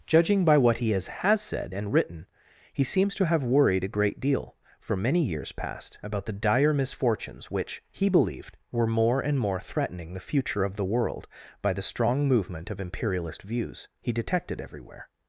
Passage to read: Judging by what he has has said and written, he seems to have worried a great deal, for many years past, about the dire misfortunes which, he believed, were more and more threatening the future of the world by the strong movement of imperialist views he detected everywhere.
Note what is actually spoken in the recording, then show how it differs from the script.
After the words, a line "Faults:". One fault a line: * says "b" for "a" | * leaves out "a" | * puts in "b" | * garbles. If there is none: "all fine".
Judging by what he has has said and written, he seems to have worried a great deal, for many years past, about the dire misfortunes which, he believed, were more and more threatening the future of the world by the strong movement of imperialist views he detected everywhere.
Faults:
all fine